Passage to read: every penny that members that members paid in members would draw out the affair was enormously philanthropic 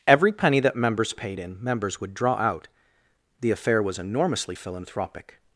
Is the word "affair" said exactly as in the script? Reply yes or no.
yes